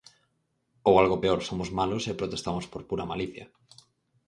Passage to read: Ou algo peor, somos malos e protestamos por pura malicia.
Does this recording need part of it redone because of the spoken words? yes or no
no